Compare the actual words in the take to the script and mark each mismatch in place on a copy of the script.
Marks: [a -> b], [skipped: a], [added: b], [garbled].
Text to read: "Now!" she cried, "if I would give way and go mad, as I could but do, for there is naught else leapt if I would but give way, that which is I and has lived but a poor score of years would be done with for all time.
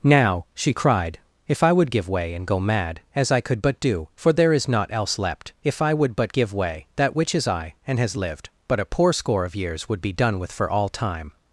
"Now!" she cried, "if I would give way and go mad, as I could but do, for there is naught else leapt if I would but give way, that which is I and has lived but a poor score of years would be done with for all time.